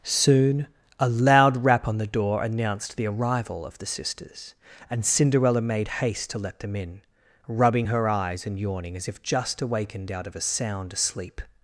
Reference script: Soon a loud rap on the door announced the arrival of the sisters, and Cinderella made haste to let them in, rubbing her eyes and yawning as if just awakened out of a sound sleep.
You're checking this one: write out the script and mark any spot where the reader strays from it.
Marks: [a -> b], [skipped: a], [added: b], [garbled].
Soon a loud rap on the door announced the arrival of the sisters, and Cinderella made haste to let them in, rubbing her eyes and yawning as if just awakened out of a sound sleep.